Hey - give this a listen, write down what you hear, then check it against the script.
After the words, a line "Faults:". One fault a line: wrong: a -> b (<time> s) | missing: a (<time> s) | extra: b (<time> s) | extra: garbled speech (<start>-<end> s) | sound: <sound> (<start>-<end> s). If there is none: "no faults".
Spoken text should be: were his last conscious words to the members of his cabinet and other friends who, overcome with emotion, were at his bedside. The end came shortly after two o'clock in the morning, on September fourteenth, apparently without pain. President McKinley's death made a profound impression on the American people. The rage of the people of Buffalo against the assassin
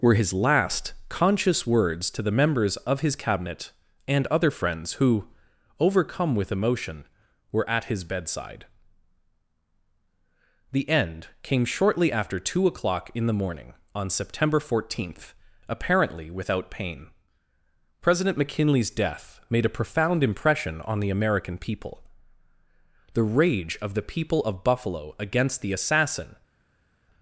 were his last conscious words to the members of his cabinet and other friends who, overcome with emotion, were at his bedside. The end came shortly after two o'clock in the morning, on September fourteenth, apparently without pain. President McKinley's death made a profound impression on the American people. The rage of the people of Buffalo against the assassin
Faults:
no faults